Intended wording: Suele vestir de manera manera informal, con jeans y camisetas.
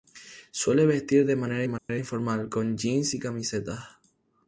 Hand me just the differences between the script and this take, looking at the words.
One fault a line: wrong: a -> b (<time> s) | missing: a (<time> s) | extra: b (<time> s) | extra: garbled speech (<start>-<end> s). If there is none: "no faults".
no faults